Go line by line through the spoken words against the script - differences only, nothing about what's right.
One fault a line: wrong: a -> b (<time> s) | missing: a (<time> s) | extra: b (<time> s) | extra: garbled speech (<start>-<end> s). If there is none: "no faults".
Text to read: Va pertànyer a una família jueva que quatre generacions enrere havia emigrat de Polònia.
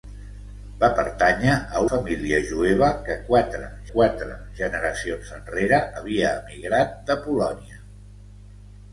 missing: una (1.8 s)
extra: quatre (3.9 s)